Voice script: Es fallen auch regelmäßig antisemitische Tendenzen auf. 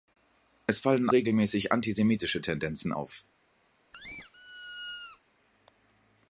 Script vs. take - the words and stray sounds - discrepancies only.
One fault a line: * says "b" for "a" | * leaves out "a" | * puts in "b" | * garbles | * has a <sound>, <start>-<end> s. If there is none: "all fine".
* leaves out "auch"
* has a squeak, 3.9-5.2 s